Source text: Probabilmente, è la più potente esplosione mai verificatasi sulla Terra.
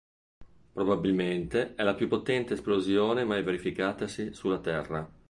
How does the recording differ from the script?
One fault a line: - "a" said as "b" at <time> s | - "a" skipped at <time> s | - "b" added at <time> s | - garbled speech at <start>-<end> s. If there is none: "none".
none